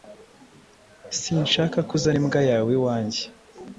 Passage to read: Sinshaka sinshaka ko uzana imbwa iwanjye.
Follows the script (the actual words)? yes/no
no